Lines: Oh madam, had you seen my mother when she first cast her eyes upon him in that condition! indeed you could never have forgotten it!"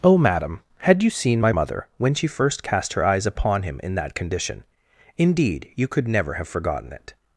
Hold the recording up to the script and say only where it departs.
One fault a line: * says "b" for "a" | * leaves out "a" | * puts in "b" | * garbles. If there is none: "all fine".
all fine